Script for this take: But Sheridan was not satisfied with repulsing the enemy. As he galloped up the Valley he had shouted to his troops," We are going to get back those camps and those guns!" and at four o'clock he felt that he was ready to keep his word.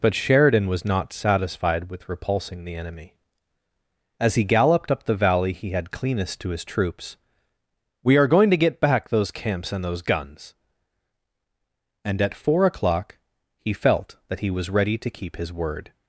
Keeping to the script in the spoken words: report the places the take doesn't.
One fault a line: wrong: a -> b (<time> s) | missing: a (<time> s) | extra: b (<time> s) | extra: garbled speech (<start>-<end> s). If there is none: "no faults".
wrong: shouted -> cleanest (5.9 s)